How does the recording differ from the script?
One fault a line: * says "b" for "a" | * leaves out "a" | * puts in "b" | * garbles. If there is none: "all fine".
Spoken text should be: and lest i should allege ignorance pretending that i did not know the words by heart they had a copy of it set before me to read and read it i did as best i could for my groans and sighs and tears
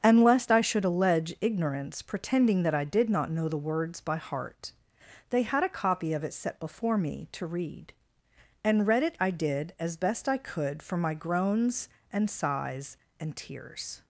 all fine